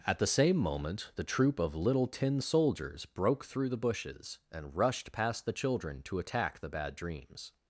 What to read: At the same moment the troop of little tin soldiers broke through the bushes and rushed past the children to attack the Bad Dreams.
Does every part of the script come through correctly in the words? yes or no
yes